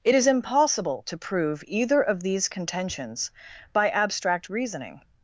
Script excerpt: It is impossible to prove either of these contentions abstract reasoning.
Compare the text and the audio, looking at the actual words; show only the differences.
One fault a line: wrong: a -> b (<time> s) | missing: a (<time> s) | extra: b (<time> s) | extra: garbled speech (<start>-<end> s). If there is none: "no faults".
extra: by (3.7 s)